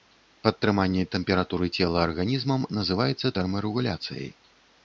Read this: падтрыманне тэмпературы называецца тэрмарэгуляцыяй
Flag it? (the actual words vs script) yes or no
yes